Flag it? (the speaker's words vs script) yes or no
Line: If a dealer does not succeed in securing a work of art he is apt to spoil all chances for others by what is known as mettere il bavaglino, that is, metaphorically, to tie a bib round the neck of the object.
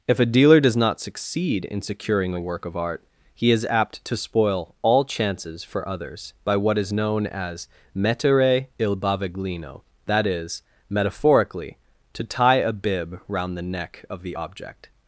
no